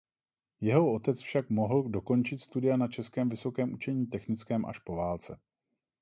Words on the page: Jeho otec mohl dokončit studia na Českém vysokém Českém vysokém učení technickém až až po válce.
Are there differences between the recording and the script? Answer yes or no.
yes